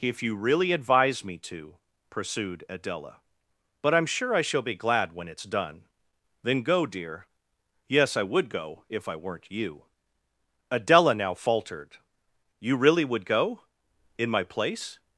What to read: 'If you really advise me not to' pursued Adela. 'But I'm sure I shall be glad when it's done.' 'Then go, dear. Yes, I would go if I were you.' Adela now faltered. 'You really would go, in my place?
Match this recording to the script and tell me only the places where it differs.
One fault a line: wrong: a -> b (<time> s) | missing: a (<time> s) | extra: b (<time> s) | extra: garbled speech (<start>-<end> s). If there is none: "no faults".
missing: not (1.4 s)
wrong: were -> weren't (9.2 s)